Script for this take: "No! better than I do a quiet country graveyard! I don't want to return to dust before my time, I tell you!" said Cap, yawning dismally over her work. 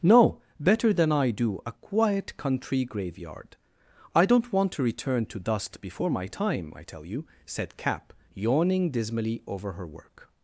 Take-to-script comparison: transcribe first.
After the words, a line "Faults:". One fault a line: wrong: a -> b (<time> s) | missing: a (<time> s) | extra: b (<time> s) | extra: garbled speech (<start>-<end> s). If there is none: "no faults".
"No! better than I do a quiet country graveyard! I don't want to return to dust before my time, I tell you!" said Cap, yawning dismally over her work.
Faults:
no faults